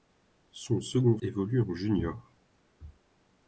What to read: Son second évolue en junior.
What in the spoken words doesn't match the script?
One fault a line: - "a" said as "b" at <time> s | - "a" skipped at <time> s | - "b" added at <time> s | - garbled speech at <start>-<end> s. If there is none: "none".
none